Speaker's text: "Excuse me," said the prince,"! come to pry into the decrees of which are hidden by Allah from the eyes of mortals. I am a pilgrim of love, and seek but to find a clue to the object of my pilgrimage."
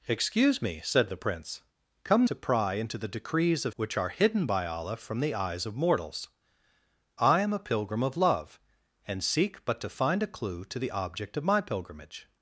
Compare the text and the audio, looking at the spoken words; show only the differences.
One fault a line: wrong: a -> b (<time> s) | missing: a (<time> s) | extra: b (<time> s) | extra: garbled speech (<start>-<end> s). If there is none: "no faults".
no faults